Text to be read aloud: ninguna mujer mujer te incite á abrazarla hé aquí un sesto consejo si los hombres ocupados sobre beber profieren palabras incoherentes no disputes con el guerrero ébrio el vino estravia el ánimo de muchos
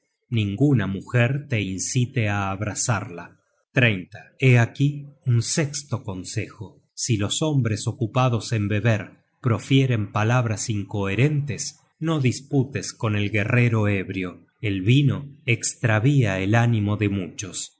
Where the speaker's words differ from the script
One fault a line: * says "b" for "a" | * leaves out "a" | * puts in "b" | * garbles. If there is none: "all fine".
* leaves out "mujer"
* says "en" for "sobre"